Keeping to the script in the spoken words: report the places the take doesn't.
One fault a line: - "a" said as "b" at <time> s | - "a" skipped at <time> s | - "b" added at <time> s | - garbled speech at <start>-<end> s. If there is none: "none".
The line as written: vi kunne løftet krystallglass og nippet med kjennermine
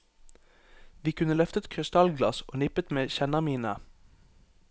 none